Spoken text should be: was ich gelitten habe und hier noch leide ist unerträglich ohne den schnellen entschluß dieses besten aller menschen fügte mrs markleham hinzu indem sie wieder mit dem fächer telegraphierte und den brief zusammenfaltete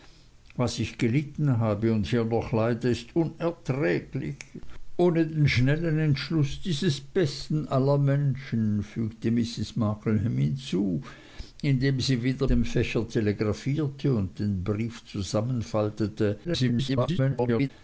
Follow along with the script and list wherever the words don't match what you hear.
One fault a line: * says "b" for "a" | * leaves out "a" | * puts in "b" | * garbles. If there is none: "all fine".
* leaves out "mit"
* garbles